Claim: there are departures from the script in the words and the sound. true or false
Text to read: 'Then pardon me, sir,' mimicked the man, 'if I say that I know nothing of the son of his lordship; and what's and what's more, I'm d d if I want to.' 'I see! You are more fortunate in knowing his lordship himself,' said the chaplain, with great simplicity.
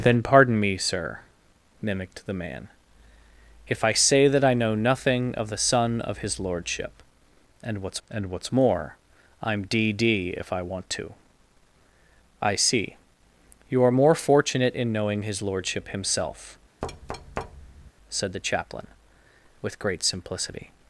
true